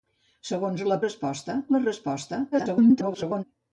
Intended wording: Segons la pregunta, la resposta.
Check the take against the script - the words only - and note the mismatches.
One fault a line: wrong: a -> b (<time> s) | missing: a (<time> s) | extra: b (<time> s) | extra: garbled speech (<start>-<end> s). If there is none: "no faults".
wrong: pregunta -> resposta (1.0 s)
extra: garbled speech (2.5-3.4 s)